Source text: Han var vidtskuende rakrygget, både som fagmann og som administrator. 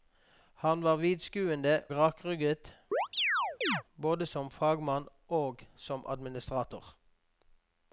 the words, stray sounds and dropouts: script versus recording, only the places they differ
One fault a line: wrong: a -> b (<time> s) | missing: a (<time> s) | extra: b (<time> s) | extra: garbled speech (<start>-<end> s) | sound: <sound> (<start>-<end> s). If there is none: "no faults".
sound: chirp (2.9-3.8 s)